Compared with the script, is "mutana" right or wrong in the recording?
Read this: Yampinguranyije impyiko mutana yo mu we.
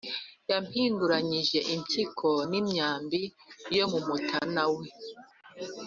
wrong